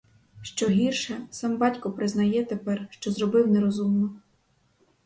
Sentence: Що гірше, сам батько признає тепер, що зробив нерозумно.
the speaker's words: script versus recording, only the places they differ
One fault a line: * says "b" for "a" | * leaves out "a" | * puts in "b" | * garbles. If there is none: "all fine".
all fine